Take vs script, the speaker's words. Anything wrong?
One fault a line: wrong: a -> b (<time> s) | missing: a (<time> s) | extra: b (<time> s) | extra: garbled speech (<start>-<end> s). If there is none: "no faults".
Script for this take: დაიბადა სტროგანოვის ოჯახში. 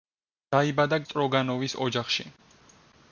no faults